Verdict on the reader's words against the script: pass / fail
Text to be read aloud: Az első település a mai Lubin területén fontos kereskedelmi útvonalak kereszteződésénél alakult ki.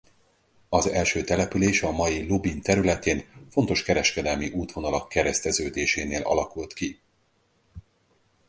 pass